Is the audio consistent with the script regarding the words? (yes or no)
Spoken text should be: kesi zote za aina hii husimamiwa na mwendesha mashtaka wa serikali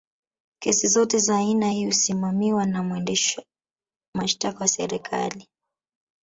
yes